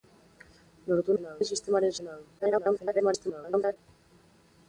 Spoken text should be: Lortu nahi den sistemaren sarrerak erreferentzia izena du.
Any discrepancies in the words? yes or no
yes